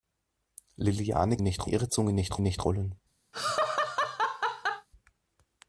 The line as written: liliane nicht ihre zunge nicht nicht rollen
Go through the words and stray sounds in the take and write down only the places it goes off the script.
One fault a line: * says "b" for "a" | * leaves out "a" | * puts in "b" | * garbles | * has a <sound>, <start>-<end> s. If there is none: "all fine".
* has a laugh, 3.3-4.9 s